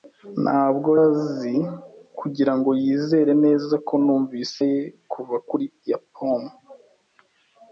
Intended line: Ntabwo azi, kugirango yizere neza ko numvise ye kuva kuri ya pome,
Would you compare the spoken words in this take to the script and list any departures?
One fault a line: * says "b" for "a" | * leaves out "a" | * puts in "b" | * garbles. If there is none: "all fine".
all fine